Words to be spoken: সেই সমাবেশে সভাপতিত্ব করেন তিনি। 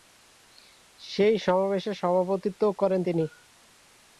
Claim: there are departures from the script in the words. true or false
false